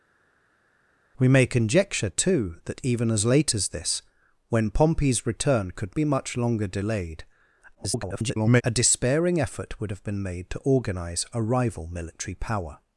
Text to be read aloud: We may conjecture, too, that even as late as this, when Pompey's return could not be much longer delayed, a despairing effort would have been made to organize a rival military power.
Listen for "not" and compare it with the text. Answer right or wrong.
wrong